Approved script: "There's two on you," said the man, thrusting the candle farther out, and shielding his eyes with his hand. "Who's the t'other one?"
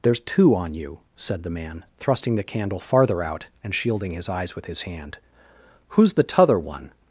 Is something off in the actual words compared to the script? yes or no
no